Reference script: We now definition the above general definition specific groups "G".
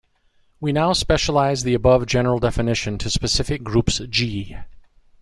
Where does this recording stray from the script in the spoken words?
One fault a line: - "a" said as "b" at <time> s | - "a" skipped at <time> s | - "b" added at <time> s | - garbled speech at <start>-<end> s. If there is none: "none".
- "definition" said as "specialize" at 0.9 s
- "to" added at 3.0 s